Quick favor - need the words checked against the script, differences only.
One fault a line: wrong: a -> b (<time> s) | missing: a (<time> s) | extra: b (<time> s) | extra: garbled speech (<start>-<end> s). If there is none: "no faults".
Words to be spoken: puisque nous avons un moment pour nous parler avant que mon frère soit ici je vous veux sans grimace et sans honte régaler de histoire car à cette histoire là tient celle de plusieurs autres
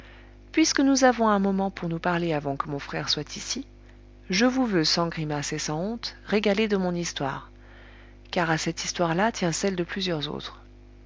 extra: mon (6.8 s)